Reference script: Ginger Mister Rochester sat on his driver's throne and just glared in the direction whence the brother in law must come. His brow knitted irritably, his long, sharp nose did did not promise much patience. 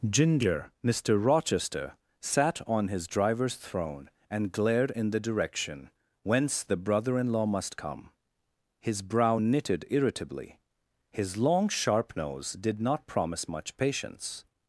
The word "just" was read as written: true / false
false